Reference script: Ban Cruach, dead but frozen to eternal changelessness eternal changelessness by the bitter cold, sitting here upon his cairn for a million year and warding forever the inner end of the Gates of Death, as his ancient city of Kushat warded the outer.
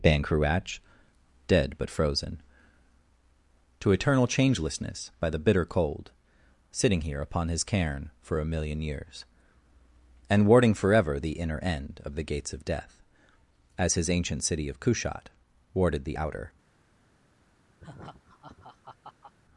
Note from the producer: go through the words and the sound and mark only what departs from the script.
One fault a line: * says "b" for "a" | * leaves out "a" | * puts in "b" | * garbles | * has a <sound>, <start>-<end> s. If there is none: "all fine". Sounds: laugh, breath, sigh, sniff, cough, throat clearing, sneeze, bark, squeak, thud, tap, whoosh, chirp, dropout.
* leaves out "eternal changelessness"
* says "years" for "year"
* has a laugh, 17.8-19.3 s